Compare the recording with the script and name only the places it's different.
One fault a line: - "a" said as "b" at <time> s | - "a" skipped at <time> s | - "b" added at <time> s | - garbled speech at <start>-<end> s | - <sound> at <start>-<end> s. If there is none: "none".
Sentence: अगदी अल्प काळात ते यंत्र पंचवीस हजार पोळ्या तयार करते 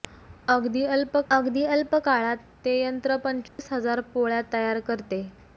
- "अगदी अल्प" added at 1.3 s
- dropout at 3.5-3.6 s